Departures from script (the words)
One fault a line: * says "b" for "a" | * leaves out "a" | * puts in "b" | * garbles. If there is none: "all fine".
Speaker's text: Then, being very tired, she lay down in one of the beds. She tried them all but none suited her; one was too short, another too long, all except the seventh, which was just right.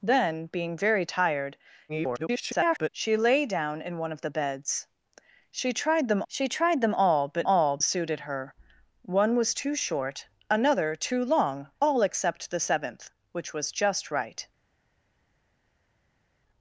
* garbles
* puts in "she tried them"
* says "all" for "none"